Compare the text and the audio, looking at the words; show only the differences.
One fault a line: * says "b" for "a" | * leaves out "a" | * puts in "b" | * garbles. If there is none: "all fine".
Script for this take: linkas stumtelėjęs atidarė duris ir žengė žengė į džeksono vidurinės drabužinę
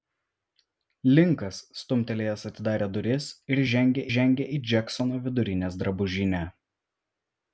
all fine